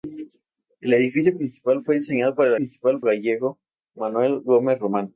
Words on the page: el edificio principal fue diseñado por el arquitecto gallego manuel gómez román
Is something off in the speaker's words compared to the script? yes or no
yes